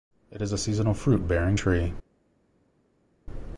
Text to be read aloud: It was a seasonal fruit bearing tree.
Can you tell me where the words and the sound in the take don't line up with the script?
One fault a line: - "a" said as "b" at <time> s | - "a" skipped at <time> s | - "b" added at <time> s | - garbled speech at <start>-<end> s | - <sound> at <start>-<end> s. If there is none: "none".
- "was" said as "is" at 0.4 s